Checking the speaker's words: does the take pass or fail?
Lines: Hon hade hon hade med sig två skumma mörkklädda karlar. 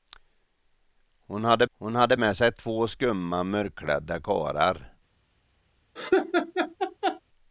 pass